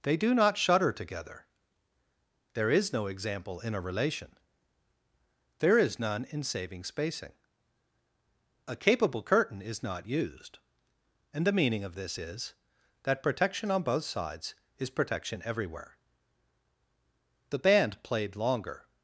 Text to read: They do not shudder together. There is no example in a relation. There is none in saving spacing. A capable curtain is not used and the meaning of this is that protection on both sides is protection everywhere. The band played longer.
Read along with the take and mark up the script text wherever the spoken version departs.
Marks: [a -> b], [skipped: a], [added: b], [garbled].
They do not shudder together. There is no example in a relation. There is none in saving spacing. A capable curtain is not used and the meaning of this is that protection on both sides is protection everywhere. The band played longer.